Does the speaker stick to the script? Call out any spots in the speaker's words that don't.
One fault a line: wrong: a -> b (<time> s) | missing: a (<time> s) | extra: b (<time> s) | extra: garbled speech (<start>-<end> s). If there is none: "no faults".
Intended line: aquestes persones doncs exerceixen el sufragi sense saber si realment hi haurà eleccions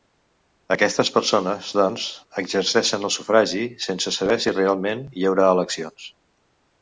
no faults